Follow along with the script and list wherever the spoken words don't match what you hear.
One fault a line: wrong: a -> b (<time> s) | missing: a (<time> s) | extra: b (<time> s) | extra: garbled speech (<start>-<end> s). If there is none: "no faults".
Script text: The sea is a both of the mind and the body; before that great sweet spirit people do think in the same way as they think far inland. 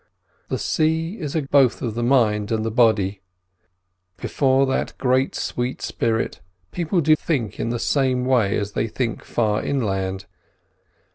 no faults